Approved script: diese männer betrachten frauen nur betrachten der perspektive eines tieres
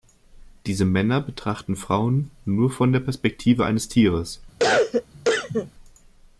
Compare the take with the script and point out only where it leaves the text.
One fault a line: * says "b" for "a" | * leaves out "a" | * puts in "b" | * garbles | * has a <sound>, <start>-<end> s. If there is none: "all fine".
* says "von" for "betrachten"
* has a cough, 4.6-5.7 s